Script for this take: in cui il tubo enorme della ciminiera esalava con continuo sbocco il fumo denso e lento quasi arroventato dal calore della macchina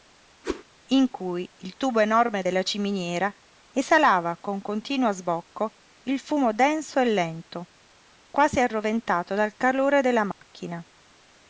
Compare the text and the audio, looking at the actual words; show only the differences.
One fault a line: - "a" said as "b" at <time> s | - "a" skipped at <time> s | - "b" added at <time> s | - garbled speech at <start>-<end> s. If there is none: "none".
none